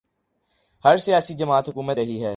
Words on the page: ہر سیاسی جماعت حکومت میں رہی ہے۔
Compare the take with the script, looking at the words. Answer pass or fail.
fail